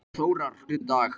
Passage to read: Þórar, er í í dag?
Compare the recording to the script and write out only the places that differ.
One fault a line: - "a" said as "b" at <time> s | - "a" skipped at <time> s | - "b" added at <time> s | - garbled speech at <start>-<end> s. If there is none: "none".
none